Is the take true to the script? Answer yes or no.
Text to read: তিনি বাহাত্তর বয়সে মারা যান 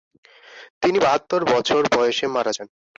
no